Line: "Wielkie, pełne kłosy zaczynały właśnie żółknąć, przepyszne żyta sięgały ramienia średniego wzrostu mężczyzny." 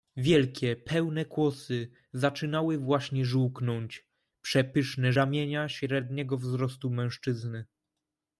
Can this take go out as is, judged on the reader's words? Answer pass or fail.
fail